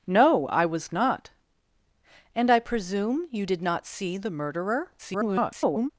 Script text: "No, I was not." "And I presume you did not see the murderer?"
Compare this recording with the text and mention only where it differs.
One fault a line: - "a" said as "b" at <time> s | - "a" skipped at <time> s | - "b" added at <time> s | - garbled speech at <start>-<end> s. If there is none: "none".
- garbled speech at 5.0-5.9 s